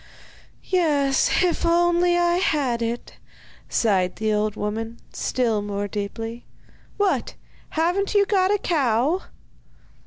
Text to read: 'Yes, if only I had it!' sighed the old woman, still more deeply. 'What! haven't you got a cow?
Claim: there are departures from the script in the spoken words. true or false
false